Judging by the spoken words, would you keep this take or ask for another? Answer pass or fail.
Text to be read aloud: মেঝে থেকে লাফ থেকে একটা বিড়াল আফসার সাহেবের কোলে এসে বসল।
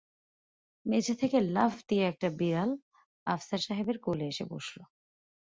fail